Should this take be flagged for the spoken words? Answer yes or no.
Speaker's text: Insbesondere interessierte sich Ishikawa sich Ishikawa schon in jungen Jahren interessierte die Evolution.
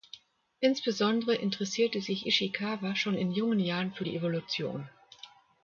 yes